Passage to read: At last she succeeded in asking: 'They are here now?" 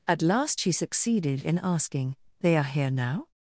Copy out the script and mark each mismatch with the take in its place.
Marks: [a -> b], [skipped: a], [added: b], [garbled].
At last she succeeded in asking: 'They are here now?"